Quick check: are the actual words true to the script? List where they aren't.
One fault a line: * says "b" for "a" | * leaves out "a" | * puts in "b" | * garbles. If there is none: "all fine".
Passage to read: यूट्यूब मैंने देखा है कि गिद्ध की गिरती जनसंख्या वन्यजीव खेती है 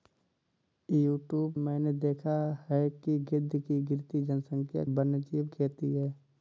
all fine